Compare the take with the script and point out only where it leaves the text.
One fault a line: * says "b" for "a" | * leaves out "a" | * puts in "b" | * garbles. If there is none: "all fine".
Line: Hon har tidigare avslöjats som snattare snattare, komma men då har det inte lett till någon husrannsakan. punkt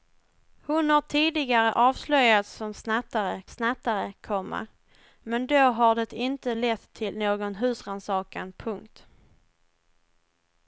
all fine